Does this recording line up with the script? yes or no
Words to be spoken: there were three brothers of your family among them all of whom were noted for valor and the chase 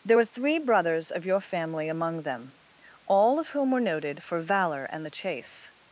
yes